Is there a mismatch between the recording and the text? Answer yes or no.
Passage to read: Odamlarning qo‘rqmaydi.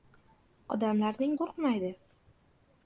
no